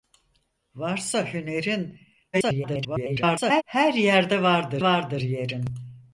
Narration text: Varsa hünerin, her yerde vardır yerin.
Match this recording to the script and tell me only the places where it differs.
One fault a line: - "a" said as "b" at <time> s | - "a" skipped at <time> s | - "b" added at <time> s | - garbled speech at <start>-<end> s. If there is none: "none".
- garbled speech at 2.3-3.6 s
- "vardır" added at 4.8 s